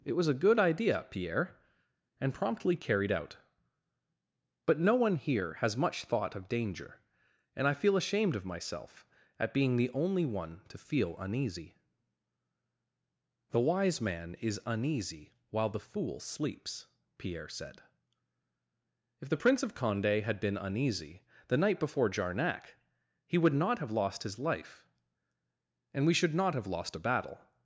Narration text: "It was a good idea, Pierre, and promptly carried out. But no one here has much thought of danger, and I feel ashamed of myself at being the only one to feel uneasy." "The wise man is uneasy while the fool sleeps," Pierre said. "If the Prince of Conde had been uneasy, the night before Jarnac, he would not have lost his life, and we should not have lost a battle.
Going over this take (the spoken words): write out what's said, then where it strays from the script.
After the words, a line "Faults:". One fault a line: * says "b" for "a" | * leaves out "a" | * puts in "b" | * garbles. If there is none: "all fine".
"It was a good idea, Pierre, and promptly carried out. But no one here has much thought of danger, and I feel ashamed of myself at being the only one to feel uneasy." "The wise man is uneasy while the fool sleeps," Pierre said. "If the Prince of Conde had been uneasy, the night before Jarnac, he would not have lost his life, and we should not have lost a battle.
Faults:
all fine